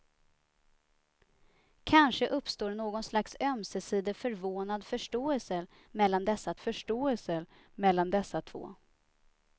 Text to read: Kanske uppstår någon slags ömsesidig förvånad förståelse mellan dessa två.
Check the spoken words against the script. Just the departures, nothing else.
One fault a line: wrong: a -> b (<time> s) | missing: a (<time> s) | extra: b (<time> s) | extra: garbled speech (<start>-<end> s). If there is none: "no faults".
extra: förståelse mellan dessa (6.6 s)